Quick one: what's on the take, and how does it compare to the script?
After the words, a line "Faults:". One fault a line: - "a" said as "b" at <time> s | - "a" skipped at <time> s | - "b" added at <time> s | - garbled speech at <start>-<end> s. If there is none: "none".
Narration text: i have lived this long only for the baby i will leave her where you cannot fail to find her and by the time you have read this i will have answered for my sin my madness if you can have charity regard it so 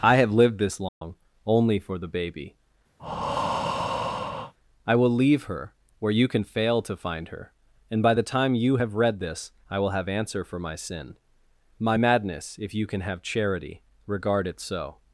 i have lived this long only for the baby i will leave her where you can fail to find her and by the time you have read this i will have answer for my sin my madness if you can have charity regard it so
Faults:
- "cannot" said as "can" at 6.3 s
- "answered" said as "answer" at 10.1 s